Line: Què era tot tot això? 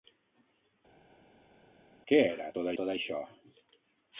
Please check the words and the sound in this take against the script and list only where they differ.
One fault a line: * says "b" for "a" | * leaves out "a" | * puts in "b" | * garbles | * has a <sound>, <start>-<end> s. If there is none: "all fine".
all fine